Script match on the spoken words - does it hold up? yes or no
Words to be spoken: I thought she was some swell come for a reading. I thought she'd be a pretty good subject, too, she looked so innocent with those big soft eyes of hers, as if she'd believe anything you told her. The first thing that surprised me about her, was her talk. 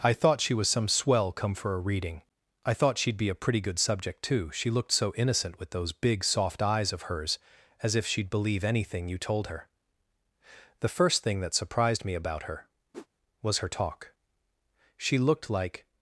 no